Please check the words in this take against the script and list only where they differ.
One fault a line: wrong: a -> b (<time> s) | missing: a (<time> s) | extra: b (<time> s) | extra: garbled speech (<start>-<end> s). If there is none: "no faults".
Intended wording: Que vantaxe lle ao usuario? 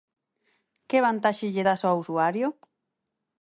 extra: das (1.7 s)